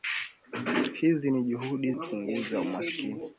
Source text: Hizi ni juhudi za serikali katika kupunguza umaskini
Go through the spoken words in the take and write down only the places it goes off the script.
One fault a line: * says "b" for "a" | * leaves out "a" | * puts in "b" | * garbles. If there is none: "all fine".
* leaves out "za serikali katika"